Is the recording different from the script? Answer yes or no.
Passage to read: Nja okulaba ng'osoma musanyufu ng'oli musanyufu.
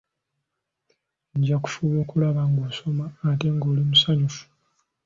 yes